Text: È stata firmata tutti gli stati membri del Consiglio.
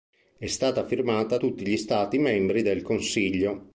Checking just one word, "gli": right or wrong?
right